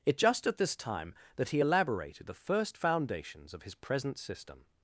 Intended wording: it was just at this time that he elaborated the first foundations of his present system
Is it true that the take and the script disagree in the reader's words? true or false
true